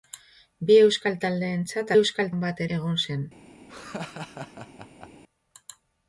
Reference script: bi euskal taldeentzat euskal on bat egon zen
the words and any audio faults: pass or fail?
fail